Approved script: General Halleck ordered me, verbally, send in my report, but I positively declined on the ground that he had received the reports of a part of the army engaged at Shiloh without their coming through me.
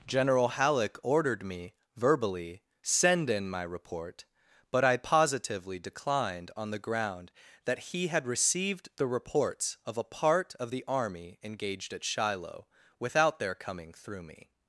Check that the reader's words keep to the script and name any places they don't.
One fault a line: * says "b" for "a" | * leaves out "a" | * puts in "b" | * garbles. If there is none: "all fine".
all fine